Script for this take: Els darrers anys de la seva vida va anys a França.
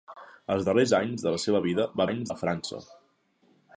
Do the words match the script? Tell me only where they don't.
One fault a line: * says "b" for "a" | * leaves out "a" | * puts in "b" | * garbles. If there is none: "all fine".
all fine